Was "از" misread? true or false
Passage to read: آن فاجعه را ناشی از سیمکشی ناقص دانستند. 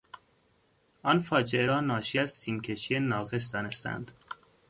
false